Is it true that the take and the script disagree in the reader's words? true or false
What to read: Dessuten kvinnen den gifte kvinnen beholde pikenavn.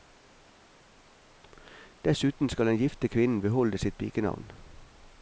true